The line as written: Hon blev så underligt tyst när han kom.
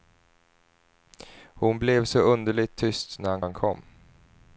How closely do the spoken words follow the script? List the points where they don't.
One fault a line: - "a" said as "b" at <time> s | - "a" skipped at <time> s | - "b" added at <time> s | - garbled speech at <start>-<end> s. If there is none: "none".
- "han" added at 3.4 s